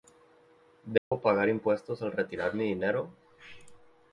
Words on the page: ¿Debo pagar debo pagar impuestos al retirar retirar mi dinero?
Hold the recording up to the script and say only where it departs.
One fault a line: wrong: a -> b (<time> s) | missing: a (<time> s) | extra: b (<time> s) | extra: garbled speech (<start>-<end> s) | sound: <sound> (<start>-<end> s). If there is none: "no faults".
sound: dropout (1.0-1.1 s)
missing: debo pagar (1.5 s)
missing: retirar (2.5 s)